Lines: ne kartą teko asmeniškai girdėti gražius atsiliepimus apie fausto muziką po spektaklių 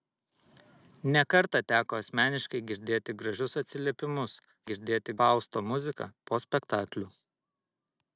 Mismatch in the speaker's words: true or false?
true